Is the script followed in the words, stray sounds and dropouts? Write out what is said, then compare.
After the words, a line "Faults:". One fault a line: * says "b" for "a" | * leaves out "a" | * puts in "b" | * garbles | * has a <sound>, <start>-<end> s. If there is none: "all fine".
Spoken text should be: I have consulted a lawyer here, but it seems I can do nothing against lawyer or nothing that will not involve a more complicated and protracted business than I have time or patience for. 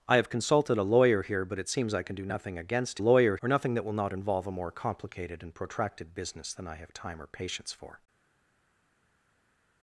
I have consulted a lawyer here, but it seems I can do nothing against lawyer or nothing that will not involve a more complicated and protracted business than I have time or patience for.
Faults:
all fine